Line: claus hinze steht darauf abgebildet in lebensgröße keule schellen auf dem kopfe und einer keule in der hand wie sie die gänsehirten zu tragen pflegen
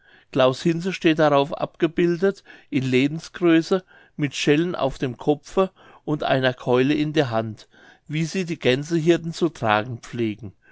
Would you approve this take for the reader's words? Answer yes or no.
no